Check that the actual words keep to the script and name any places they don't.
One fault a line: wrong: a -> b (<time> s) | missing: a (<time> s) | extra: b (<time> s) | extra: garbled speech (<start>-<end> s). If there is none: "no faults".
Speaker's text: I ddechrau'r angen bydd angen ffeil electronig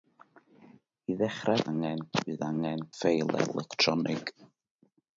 no faults